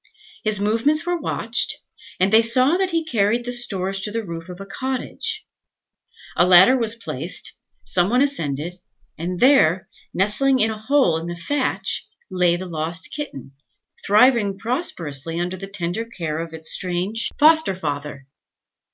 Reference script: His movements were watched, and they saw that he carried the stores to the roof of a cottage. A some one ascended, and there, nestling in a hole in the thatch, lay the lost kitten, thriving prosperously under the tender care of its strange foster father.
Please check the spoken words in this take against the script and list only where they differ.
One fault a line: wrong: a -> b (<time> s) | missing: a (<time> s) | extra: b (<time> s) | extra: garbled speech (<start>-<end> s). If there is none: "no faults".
extra: ladder was placed (6.4 s)